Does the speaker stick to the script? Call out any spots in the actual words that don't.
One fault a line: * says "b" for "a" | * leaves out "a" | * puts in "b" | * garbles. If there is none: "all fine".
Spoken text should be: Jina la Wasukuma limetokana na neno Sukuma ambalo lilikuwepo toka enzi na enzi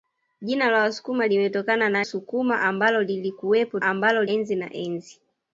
* leaves out "neno"
* says "ambalo" for "toka"